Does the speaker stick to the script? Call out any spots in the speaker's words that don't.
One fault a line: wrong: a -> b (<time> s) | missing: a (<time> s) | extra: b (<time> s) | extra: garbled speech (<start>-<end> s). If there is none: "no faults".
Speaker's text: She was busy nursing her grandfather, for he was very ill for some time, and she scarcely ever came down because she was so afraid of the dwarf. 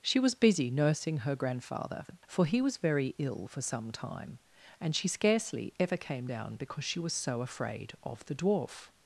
no faults